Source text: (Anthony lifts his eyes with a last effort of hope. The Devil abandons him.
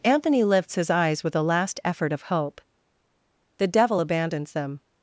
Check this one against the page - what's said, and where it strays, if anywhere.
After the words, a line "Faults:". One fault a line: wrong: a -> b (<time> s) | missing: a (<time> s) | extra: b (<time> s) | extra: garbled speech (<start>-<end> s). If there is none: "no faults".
(Anthony lifts his eyes with a last effort of hope. The Devil abandons them.
Faults:
wrong: him -> them (4.5 s)